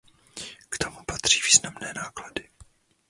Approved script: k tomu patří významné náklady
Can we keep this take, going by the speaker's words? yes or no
yes